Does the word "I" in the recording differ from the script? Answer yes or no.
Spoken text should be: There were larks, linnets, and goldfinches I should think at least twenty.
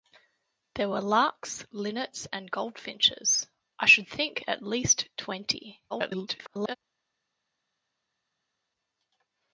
no